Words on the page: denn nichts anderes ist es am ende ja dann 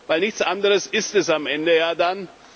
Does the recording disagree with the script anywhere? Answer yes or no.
no